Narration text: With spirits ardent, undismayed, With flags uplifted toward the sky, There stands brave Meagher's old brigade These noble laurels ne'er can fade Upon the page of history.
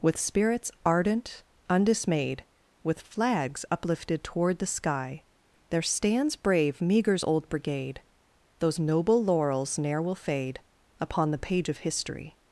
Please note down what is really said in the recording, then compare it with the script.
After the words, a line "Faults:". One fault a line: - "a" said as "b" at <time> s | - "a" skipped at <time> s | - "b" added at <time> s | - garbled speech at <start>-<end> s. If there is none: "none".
With spirits ardent, undismayed, With flags uplifted toward the sky, There stands brave Meagher's old brigade Those noble laurels ne'er will fade Upon the page of history.
Faults:
- "These" said as "Those" at 8.6 s
- "can" said as "will" at 10.0 s